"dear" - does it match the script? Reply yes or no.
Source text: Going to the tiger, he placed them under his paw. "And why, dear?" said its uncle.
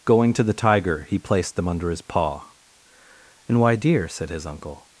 yes